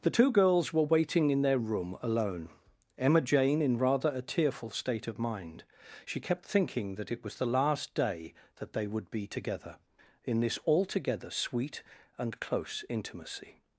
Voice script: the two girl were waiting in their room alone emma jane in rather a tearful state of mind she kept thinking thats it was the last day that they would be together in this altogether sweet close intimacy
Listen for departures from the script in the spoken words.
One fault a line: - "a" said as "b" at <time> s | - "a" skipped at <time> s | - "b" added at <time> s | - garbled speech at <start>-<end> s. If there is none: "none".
- "girl" said as "girls" at 0.3 s
- "thats" said as "that" at 7.0 s
- "and" added at 12.2 s